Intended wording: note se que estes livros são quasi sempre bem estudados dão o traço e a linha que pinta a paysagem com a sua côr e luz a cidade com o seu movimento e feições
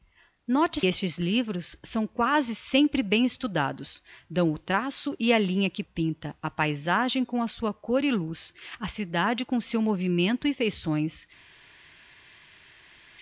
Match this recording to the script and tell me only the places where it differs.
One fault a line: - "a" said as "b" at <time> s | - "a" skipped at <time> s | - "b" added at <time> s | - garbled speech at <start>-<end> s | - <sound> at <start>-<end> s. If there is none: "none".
- "se que" skipped at 0.8 s